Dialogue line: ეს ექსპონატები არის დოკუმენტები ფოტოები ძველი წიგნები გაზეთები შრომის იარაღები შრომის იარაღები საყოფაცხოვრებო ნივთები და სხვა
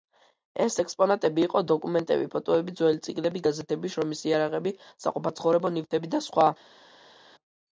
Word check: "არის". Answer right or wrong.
wrong